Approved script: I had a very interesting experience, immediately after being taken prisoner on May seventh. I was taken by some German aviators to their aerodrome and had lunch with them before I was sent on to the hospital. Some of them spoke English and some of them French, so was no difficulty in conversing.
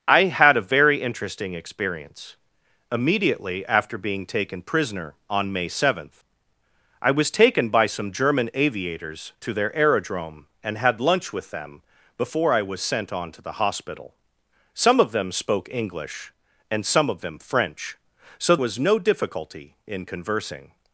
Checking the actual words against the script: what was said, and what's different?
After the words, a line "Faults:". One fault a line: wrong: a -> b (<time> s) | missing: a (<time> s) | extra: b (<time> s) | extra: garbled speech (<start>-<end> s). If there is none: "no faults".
I had a very interesting experience, immediately after being taken prisoner on May seventh. I was taken by some German aviators to their aerodrome and had lunch with them before I was sent on to the hospital. Some of them spoke English and some of them French, so was no difficulty in conversing.
Faults:
no faults